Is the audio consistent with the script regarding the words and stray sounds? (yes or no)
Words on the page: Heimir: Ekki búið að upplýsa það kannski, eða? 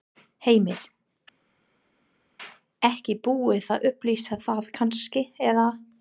yes